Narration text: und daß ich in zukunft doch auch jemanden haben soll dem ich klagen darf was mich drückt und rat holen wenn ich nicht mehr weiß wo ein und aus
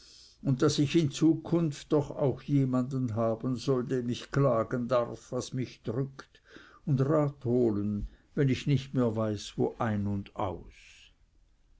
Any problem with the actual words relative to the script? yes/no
no